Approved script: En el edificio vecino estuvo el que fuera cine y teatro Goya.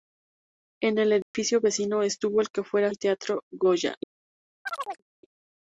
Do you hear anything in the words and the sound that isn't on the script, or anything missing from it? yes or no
yes